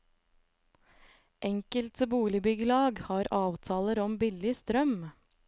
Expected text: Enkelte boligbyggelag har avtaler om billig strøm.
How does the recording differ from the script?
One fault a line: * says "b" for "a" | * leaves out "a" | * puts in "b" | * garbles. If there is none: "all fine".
all fine